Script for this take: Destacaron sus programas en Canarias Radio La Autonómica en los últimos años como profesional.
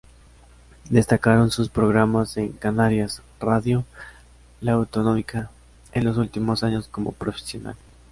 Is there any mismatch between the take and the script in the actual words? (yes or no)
no